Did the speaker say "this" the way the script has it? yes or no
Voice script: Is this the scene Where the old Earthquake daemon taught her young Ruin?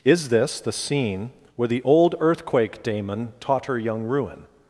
yes